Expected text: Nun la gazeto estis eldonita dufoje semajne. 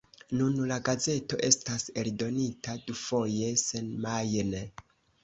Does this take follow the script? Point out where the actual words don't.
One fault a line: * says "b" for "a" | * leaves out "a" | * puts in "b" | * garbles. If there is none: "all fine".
* says "estas" for "estis"